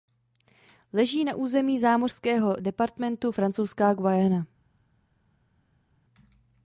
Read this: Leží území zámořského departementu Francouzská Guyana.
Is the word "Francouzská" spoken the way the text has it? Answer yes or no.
yes